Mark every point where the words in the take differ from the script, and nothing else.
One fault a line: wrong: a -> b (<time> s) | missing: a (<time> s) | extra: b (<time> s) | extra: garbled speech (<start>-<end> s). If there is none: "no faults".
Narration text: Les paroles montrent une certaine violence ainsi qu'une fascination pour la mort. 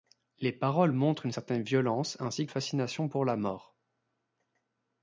missing: qu'une (2.5 s)